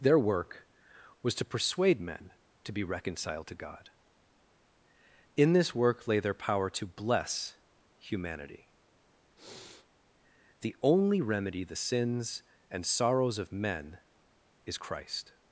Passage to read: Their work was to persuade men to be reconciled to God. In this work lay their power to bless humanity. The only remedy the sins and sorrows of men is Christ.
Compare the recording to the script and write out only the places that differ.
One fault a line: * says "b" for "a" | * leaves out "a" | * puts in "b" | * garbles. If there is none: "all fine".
all fine